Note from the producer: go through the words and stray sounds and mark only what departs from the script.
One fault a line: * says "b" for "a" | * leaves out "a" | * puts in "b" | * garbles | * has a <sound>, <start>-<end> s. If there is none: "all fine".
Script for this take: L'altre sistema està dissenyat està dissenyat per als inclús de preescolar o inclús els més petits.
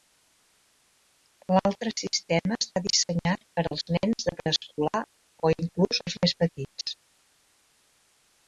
* leaves out "està dissenyat"
* says "nens" for "inclús"